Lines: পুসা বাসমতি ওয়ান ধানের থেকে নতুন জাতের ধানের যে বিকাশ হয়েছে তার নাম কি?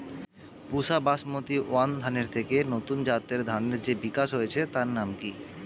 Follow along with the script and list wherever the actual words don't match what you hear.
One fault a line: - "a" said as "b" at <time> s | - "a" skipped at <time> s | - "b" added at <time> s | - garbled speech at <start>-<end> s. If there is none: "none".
none